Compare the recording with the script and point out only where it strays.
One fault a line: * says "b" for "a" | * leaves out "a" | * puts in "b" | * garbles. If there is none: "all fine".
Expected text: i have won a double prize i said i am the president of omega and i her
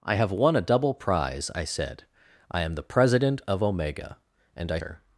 all fine